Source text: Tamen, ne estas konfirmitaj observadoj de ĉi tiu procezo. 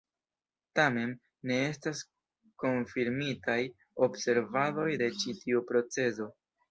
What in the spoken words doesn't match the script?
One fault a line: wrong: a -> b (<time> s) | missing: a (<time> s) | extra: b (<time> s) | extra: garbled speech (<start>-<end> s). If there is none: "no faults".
no faults